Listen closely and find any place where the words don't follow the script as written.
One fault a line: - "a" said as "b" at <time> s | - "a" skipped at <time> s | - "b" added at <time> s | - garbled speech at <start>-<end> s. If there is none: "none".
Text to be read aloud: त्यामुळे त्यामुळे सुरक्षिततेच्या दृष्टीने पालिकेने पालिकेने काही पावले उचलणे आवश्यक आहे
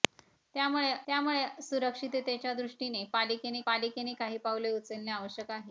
none